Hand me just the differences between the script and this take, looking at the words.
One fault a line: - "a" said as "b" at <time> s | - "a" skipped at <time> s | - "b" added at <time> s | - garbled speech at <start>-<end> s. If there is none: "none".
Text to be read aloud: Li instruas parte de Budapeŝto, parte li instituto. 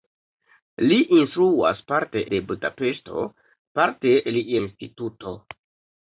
none